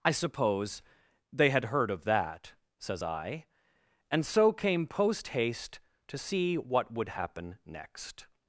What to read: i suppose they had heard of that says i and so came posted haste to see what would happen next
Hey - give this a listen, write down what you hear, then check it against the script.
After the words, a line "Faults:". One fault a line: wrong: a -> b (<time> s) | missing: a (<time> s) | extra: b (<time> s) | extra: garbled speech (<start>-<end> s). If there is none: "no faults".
i suppose they had heard of that says i and so came post haste to see what would happen next
Faults:
wrong: posted -> post (4.9 s)